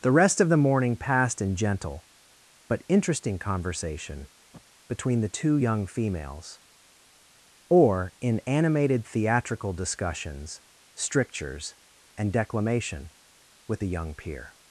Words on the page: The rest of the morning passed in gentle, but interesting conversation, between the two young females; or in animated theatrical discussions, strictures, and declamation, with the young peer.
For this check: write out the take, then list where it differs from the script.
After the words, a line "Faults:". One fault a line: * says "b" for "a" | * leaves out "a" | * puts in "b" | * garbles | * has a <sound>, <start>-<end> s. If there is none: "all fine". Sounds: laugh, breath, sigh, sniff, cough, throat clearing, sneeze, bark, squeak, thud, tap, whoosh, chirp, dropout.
The rest of the morning passed in gentle, but interesting conversation, between the two young females; or in animated theatrical discussions, strictures, and declamation, with the young peer.
Faults:
* has a sniff, 4.5-4.6 s